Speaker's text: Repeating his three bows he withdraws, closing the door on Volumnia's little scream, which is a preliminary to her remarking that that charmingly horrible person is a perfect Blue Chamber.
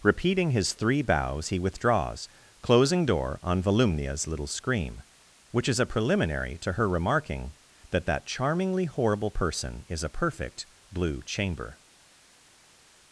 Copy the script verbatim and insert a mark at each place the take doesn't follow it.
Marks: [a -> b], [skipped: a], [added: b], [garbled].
Repeating his three bows he withdraws, closing [skipped: the] door on Volumnia's little scream, which is a preliminary to her remarking that that charmingly horrible person is a perfect Blue Chamber.